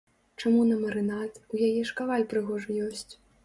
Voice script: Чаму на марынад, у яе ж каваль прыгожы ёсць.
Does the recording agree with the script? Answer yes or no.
yes